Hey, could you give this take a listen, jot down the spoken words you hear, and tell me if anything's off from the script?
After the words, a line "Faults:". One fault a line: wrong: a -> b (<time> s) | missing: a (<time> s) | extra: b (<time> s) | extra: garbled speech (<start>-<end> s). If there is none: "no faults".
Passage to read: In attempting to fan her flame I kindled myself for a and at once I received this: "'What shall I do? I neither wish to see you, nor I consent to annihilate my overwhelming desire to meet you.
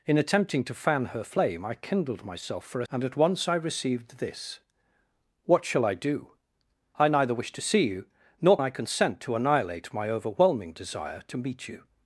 In attempting to fan her flame I kindled myself for a and at once I received this: "'What shall I do? I neither wish to see you, nor I consent to annihilate my overwhelming desire to meet you.
Faults:
no faults